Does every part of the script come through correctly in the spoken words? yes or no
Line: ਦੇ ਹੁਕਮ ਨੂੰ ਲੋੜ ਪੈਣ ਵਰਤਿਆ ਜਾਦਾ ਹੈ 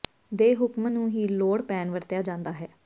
no